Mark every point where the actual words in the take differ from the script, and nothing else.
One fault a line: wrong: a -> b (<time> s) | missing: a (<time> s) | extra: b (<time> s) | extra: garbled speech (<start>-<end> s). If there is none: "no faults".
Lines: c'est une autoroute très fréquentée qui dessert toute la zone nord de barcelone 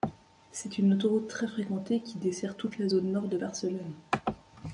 no faults